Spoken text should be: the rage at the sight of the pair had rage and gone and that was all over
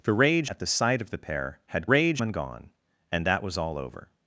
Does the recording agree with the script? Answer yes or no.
yes